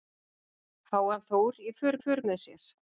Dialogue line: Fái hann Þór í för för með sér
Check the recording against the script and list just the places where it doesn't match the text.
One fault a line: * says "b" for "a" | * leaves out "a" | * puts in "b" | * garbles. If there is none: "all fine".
all fine